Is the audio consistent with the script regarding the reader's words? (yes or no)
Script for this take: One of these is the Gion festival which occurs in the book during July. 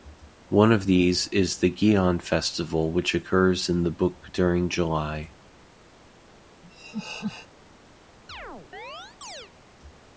yes